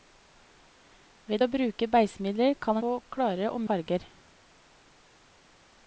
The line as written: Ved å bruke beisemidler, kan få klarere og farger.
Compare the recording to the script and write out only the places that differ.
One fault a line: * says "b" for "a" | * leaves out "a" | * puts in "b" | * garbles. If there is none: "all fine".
all fine